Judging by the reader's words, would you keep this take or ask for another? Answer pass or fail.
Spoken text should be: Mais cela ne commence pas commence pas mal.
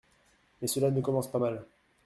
fail